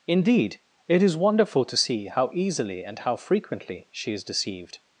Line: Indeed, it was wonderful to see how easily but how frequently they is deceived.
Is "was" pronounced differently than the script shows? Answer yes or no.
yes